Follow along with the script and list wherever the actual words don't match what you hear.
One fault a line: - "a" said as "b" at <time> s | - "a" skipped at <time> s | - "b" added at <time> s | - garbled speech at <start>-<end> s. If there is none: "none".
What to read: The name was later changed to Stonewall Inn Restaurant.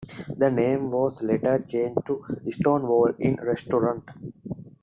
none